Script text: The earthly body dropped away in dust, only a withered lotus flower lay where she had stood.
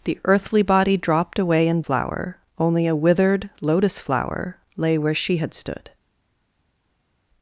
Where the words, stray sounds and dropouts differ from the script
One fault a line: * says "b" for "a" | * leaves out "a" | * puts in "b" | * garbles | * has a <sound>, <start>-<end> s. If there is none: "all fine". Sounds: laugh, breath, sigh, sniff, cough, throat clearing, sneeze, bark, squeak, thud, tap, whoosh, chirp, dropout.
* says "flower" for "dust"